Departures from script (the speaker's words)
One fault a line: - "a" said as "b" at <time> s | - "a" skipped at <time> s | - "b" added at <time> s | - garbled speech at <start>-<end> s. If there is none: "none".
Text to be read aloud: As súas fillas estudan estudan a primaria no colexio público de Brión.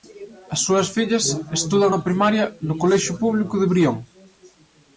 - "estudan" skipped at 1.9 s